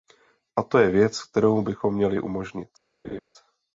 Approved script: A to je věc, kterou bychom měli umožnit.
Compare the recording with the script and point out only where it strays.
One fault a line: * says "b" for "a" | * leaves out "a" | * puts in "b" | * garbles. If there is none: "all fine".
all fine